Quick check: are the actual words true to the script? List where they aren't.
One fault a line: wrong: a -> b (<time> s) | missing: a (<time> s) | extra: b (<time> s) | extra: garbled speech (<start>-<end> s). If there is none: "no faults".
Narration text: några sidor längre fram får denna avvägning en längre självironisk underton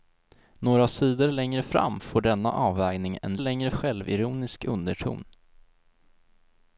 no faults